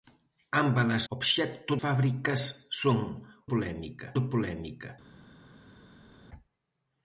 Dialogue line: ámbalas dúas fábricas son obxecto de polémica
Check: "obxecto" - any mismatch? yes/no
yes